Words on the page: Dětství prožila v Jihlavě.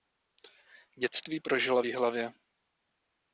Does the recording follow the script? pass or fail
pass